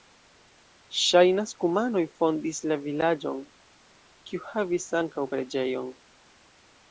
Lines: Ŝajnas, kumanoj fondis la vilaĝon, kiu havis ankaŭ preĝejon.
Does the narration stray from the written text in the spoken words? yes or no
no